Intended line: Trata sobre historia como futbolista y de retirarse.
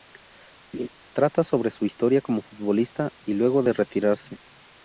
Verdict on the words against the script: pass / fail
fail